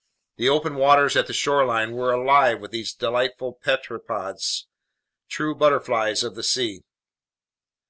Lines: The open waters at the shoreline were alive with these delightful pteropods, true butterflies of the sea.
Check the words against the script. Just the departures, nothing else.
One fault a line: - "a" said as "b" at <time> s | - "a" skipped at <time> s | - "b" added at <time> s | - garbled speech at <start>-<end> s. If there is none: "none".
none